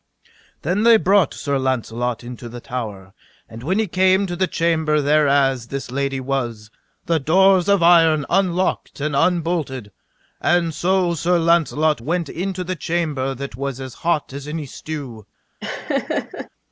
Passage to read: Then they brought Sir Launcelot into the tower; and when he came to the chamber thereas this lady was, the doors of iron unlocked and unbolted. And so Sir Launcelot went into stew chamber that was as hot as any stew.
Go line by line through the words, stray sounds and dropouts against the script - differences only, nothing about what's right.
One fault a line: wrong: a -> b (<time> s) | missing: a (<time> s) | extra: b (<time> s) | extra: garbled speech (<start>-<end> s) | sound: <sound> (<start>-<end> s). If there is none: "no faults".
wrong: stew -> the (12.6 s)
sound: laugh (15.6-16.5 s)